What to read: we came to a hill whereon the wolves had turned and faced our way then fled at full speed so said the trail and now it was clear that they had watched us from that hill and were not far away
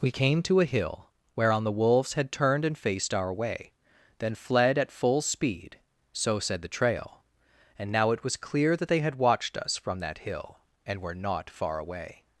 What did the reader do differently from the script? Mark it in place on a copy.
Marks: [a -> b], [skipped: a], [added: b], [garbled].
we came to a hill whereon the wolves had turned and faced our way then fled at full speed so said the trail and now it was clear that they had watched us from that hill and were not far away